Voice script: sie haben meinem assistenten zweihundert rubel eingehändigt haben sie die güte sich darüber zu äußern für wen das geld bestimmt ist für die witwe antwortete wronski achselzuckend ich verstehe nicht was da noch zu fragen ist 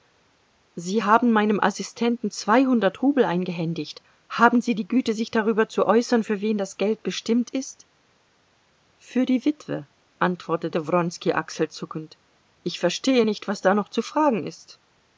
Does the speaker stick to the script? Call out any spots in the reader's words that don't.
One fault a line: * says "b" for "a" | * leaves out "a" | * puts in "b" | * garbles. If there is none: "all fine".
all fine